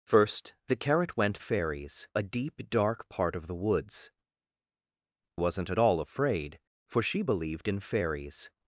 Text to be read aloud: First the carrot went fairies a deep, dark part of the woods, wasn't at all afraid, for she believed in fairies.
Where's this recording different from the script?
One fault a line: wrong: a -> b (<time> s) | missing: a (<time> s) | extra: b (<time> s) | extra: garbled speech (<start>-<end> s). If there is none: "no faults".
no faults